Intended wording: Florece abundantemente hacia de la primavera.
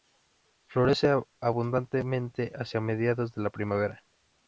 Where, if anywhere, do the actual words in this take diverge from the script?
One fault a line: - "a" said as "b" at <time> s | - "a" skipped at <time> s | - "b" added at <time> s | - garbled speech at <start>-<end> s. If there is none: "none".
- "mediados" added at 2.8 s